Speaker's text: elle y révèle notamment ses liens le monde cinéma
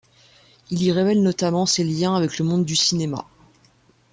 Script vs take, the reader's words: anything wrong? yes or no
yes